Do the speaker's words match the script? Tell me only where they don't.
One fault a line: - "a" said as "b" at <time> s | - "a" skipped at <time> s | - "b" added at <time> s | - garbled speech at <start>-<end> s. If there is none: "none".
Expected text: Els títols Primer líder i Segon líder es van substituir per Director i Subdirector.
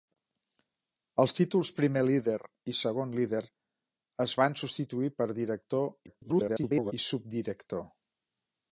- garbled speech at 6.1-6.9 s